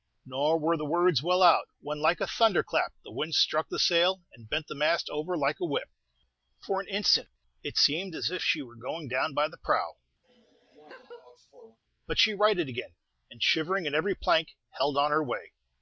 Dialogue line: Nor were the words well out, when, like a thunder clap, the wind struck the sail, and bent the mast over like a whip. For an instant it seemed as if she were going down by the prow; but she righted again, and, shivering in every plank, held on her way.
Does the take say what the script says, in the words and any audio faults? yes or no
no